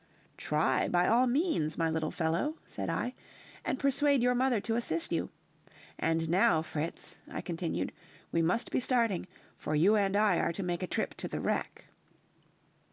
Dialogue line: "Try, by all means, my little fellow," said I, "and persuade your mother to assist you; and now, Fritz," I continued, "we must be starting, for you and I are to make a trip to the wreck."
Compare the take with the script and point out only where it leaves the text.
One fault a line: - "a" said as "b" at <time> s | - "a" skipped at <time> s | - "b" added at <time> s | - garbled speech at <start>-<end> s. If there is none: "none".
none